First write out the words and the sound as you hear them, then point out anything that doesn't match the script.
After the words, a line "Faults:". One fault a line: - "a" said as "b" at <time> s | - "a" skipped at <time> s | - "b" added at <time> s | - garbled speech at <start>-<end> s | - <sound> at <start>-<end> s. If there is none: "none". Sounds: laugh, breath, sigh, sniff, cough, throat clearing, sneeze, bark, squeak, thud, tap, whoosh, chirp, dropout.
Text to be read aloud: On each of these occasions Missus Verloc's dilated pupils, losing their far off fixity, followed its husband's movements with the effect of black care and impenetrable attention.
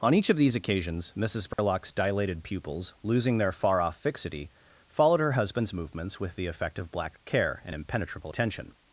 On each of these occasions Missus Verloc's dilated pupils, losing their far off fixity, followed her husband's movements with the effect of black care and impenetrable attention.
Faults:
- dropout at 1.5-1.6 s
- "its" said as "her" at 5.2 s